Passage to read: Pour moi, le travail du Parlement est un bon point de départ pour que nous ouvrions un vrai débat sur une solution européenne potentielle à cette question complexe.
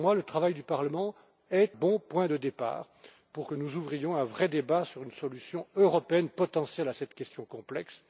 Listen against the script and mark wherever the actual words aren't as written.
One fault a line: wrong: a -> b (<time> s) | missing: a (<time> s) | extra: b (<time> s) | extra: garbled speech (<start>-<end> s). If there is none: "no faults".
missing: un (1.8 s)